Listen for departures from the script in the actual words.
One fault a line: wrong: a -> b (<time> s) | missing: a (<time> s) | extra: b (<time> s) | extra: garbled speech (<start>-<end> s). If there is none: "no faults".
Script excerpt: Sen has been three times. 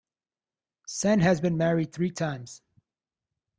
extra: married (1.6 s)